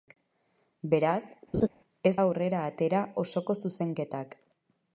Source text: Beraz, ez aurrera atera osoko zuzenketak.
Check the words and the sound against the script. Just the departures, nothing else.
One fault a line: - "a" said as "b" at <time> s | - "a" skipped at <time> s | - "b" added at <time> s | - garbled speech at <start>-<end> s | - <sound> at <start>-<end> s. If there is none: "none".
- laugh at 1.5-1.7 s